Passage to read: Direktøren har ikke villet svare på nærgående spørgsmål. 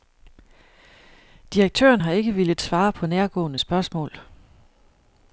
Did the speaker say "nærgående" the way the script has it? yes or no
yes